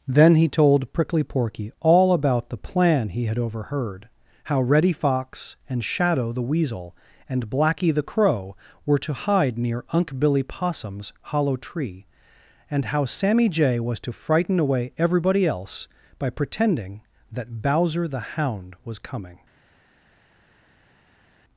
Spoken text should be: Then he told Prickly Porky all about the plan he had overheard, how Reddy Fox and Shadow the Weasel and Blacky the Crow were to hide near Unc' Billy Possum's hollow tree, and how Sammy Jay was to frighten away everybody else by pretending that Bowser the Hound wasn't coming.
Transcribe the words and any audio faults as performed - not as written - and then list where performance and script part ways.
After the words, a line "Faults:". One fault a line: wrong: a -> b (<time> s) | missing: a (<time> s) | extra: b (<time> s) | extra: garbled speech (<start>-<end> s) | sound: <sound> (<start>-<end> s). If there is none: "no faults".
Then he told Prickly Porky all about the plan he had overheard, how Reddy Fox and Shadow the Weasel and Blacky the Crow were to hide near Unc' Billy Possum's hollow tree, and how Sammy Jay was to frighten away everybody else by pretending that Bowser the Hound was coming.
Faults:
wrong: wasn't -> was (18.8 s)